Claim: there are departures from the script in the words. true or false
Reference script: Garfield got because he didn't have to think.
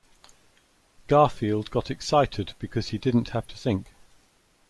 true